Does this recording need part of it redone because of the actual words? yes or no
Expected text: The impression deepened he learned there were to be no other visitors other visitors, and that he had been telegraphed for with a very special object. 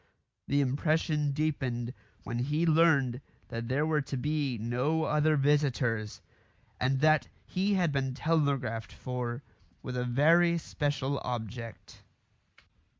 yes